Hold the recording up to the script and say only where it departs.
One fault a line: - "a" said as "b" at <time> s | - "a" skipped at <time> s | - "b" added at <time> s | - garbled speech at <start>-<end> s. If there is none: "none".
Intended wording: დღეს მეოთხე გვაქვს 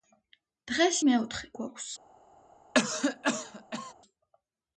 none